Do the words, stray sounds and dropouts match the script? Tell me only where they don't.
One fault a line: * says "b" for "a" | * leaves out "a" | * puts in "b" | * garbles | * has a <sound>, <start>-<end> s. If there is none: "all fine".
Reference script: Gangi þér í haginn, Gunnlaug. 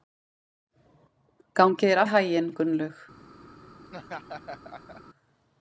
* has a laugh, 3.9-5.0 s